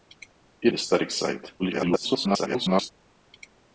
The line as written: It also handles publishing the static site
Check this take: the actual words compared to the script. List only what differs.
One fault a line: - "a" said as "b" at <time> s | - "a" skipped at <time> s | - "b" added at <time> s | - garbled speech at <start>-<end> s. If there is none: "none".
- "also handles publishing" skipped at 0.7 s
- garbled speech at 1.6-2.9 s